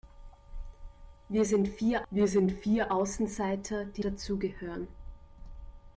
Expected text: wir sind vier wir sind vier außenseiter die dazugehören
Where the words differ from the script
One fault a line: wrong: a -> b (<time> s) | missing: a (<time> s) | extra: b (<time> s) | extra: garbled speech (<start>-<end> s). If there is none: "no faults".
no faults